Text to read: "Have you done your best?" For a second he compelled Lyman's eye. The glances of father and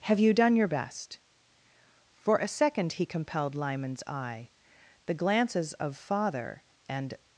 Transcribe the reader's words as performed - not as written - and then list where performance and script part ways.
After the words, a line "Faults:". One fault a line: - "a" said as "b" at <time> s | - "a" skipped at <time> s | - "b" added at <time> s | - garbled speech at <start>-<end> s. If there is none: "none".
"Have you done your best?" For a second he compelled Lyman's eye. The glances of father and
Faults:
none